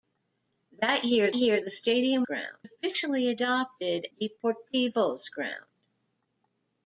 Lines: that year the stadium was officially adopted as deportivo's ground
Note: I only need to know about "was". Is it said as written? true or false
false